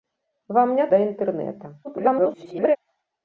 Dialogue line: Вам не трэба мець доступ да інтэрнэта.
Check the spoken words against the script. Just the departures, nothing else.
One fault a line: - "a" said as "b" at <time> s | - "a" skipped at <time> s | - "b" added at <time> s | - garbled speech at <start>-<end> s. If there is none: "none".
- "трэба мець доступ" skipped at 0.9 s
- garbled speech at 1.8-2.8 s